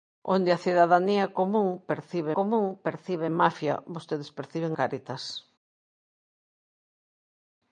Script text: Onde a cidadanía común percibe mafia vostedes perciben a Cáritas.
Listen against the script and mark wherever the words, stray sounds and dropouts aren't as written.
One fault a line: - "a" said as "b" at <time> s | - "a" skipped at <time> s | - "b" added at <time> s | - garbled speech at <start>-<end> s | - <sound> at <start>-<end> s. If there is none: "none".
- "común percibe" added at 2.3 s
- "a" skipped at 4.8 s